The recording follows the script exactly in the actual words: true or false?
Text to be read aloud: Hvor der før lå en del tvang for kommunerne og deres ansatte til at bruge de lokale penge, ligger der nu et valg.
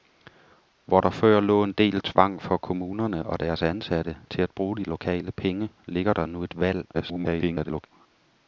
false